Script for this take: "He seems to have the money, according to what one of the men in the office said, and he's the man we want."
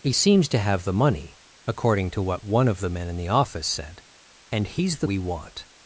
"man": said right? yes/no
no